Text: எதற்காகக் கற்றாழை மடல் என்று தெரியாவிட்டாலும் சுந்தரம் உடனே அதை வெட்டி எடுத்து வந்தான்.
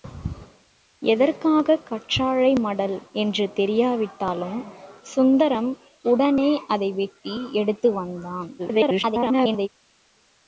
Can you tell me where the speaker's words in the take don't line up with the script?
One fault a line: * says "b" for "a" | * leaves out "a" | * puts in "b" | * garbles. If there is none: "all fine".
* garbles